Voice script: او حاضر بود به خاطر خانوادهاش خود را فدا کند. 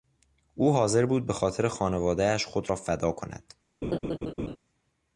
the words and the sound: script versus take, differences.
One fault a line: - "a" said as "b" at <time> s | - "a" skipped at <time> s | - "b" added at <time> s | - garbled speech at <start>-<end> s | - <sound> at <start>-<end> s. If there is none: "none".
- laugh at 3.8-4.6 s